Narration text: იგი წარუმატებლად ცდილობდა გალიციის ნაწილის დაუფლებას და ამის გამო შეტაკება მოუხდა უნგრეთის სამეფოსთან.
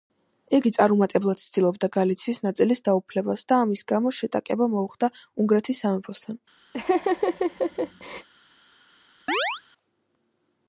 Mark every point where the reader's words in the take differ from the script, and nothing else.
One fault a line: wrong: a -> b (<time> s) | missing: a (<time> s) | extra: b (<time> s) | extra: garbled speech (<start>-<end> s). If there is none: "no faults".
no faults